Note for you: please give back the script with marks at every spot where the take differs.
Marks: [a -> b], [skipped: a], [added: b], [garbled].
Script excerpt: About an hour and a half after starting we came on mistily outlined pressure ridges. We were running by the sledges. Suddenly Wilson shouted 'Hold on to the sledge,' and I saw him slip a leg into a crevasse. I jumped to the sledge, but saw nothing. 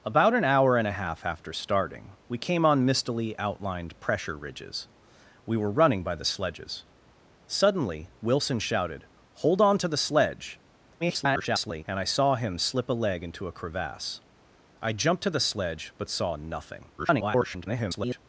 About an hour and a half after starting we came on mistily outlined pressure ridges. We were running by the sledges. Suddenly Wilson shouted 'Hold on to the sledge,' [garbled] and I saw him slip a leg into a crevasse. I jumped to the sledge, but saw nothing. [garbled]